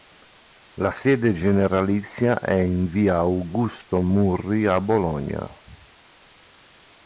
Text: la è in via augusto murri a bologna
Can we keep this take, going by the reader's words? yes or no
no